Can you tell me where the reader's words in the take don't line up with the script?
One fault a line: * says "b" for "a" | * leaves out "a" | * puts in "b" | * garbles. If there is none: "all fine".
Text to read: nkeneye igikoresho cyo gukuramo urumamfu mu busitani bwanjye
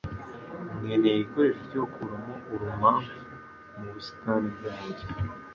all fine